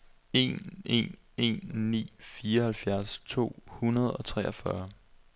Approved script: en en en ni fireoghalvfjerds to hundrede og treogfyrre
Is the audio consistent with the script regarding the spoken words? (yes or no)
yes